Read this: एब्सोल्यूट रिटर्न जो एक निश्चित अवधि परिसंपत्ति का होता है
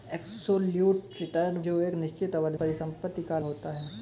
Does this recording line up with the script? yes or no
yes